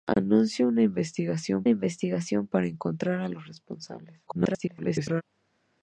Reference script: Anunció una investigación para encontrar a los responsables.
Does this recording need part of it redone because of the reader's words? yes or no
yes